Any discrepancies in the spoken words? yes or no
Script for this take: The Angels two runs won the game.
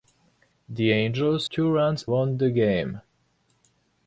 no